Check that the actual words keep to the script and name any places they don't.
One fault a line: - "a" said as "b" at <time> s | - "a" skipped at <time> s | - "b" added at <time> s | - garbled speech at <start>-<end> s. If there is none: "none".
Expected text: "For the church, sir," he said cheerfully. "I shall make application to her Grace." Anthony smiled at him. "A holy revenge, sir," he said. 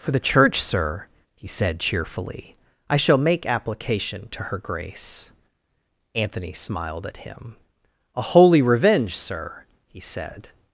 none